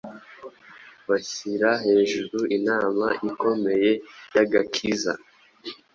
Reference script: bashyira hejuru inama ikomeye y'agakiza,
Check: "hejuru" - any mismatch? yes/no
no